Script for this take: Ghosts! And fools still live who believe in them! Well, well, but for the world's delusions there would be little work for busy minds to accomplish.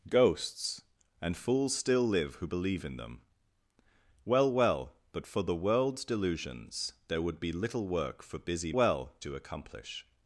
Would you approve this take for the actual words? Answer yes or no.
no